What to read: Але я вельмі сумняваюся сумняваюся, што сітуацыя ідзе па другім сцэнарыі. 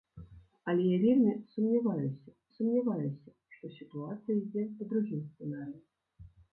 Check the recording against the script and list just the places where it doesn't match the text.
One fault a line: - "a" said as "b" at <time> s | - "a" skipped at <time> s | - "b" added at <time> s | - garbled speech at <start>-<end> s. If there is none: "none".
none